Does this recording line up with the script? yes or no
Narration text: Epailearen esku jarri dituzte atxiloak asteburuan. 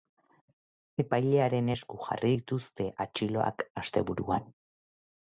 yes